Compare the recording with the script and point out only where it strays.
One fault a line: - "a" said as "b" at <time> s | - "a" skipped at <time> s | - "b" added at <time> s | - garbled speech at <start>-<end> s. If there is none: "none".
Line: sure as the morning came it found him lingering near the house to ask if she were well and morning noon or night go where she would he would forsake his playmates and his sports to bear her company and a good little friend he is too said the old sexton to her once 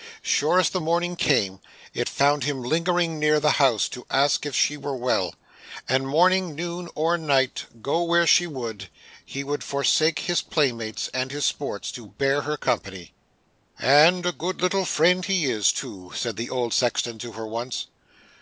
none